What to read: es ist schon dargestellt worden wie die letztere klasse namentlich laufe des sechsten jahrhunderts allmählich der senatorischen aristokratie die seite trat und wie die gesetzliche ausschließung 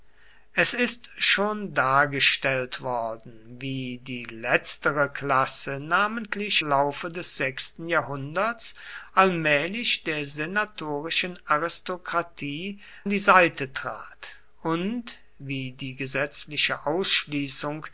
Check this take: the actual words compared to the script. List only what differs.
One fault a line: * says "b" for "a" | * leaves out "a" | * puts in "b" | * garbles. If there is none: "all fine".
all fine